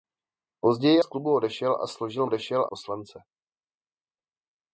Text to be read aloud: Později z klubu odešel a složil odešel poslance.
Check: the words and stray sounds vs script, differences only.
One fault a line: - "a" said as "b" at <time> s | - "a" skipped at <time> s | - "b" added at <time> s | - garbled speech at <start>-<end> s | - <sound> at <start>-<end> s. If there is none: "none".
none